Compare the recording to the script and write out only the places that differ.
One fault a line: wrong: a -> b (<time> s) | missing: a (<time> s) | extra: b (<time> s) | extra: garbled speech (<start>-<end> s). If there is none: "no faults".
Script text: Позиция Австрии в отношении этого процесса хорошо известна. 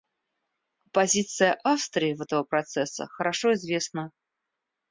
missing: отношении (2.2 s)